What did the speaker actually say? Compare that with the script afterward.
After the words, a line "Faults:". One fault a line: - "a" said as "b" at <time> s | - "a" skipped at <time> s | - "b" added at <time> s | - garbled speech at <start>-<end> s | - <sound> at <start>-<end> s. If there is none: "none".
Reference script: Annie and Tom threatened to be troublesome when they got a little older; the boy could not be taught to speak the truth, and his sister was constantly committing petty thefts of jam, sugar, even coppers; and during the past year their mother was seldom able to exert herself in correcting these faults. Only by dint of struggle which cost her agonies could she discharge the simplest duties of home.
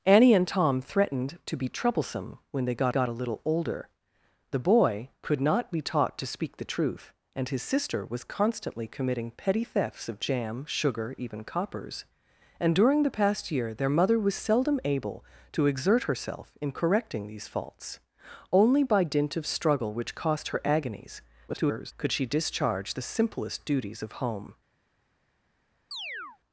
Annie and Tom threatened to be troublesome when they got got a little older; the boy could not be taught to speak the truth, and his sister was constantly committing petty thefts of jam, sugar, even coppers; and during the past year their mother was seldom able to exert herself in correcting these faults. Only by dint of struggle which cost her agonies [garbled] could she discharge the simplest duties of home.
Faults:
- "got" added at 2.9 s
- garbled speech at 21.5-21.9 s
- chirp at 25.9-26.4 s